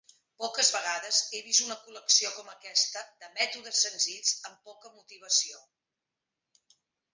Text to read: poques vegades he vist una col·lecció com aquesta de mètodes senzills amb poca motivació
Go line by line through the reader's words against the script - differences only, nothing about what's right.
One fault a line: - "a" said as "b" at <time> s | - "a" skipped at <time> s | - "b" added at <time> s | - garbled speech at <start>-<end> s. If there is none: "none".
none